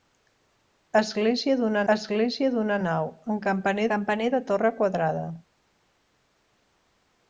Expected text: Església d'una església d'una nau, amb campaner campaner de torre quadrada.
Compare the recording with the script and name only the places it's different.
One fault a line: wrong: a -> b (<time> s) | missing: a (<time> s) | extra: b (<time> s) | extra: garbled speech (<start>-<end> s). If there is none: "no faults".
no faults